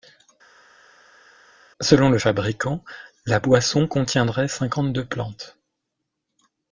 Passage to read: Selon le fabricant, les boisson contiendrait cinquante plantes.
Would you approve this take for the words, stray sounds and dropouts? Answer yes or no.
no